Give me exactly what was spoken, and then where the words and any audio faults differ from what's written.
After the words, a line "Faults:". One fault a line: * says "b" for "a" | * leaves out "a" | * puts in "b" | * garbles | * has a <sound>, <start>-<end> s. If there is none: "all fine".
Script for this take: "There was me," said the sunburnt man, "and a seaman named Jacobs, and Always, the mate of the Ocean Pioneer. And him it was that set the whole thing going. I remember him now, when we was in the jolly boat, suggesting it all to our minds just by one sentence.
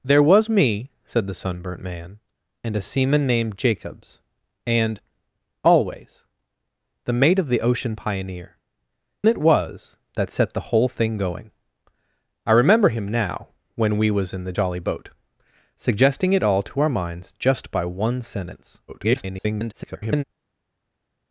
"There was me," said the sunburnt man, "and a seaman named Jacobs, and Always, the mate of the Ocean Pioneer. It was that set the whole thing going. I remember him now, when we was in the jolly boat, suggesting it all to our minds just by one sentence. [garbled]
Faults:
* leaves out "And him"
* garbles